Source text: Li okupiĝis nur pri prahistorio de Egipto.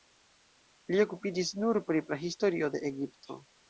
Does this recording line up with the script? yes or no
yes